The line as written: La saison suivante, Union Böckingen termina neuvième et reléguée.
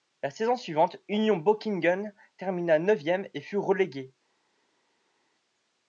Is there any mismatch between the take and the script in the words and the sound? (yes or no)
yes